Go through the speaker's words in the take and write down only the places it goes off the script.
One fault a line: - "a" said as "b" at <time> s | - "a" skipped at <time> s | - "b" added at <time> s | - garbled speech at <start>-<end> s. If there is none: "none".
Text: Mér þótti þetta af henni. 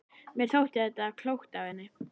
- "klókt" added at 1.2 s